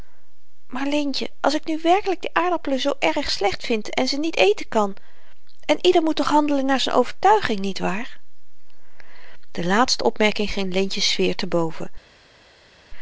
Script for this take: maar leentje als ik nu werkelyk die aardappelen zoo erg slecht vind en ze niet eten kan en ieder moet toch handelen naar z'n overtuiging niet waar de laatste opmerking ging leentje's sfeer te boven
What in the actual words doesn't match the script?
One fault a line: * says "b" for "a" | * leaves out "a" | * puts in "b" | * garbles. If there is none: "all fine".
all fine